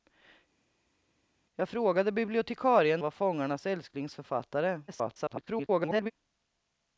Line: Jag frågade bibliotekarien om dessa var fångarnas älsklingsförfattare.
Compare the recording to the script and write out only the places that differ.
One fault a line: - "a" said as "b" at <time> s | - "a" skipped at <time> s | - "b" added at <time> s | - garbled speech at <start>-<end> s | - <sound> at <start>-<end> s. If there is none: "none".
- "om dessa" skipped at 3.0 s
- garbled speech at 4.9-6.1 s